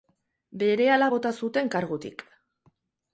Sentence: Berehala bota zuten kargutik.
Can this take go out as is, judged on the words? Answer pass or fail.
pass